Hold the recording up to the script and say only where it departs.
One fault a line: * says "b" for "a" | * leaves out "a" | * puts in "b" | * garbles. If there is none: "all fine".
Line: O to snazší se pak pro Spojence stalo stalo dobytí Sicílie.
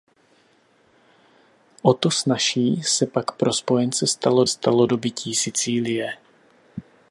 all fine